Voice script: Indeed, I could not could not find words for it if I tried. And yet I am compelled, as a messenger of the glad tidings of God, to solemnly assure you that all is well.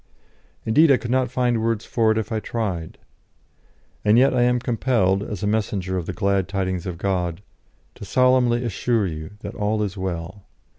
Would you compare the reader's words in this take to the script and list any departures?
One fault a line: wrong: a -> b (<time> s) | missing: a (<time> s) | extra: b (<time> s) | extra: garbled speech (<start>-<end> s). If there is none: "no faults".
missing: could not (1.3 s)